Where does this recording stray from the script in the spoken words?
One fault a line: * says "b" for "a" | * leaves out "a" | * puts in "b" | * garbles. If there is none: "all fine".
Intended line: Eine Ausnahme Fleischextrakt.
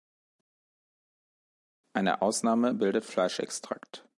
* puts in "bildet"